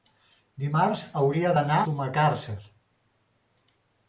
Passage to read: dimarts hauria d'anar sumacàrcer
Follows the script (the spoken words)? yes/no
yes